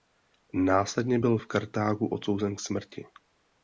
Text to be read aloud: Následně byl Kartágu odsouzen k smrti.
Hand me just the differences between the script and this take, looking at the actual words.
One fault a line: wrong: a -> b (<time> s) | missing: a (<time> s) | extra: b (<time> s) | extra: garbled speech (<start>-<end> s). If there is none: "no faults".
extra: v (1.3 s)